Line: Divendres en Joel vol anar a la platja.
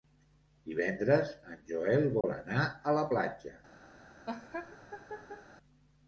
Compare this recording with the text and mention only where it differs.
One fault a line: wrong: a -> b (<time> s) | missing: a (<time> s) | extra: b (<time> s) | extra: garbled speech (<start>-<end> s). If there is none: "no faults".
no faults